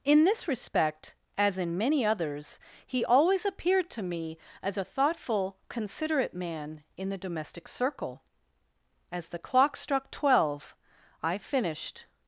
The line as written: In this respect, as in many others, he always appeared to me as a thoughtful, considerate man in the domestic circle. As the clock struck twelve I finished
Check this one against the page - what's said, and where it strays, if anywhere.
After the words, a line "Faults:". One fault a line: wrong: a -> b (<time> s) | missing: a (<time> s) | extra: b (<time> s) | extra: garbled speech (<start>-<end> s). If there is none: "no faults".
In this respect, as in many others, he always appeared to me as a thoughtful, considerate man in the domestic circle. As the clock struck twelve I finished
Faults:
no faults